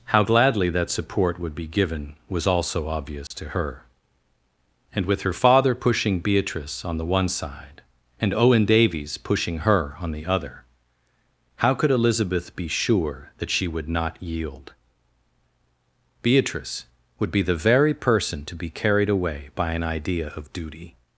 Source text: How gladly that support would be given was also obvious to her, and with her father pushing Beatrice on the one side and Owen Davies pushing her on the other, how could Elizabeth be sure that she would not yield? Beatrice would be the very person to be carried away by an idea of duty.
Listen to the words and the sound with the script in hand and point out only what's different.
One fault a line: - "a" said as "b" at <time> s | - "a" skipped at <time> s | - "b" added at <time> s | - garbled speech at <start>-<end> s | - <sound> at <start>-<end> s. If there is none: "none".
- dropout at 3.3-3.3 s